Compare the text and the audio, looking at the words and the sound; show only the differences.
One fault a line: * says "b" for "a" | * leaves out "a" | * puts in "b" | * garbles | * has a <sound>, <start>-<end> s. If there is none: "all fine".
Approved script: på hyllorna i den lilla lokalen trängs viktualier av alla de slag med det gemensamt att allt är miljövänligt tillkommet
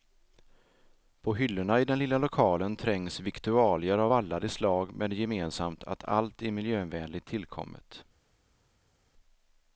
all fine